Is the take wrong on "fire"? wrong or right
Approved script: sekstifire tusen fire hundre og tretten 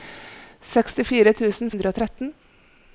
wrong